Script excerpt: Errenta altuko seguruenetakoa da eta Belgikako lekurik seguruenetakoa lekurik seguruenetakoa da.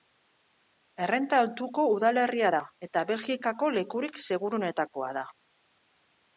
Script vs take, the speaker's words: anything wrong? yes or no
yes